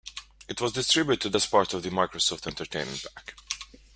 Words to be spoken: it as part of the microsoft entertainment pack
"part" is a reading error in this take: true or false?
false